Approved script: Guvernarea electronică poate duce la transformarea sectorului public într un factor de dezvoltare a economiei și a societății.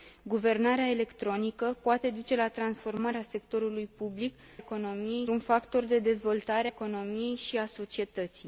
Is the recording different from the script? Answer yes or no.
yes